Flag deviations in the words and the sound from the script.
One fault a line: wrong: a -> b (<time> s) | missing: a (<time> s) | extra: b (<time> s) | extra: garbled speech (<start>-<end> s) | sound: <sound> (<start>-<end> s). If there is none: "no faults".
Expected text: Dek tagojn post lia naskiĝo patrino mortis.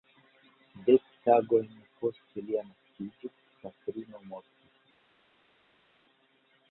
no faults